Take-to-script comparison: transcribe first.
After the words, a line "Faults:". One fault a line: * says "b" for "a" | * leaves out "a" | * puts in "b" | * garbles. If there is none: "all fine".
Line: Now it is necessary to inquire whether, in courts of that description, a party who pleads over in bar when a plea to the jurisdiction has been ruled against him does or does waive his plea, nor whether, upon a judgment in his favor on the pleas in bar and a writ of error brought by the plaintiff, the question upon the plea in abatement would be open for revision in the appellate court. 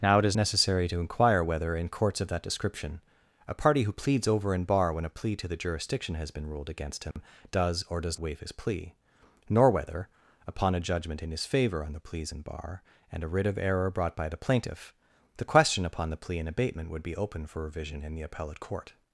Now it is necessary to inquire whether, in courts of that description, a party who pleads over in bar when a plea to the jurisdiction has been ruled against him does or does waive his plea, nor whether, upon a judgment in his favor on the pleas in bar and a writ of error brought by the plaintiff, the question upon the plea in abatement would be open for revision in the appellate court.
Faults:
all fine